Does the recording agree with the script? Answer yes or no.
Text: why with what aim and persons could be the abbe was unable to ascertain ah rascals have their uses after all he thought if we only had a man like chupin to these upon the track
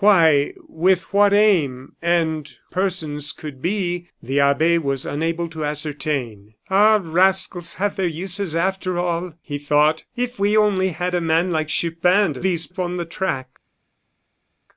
yes